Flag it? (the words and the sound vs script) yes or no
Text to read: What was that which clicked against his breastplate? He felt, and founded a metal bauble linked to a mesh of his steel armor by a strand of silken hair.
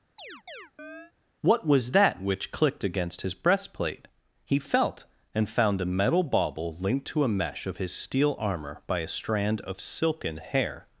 yes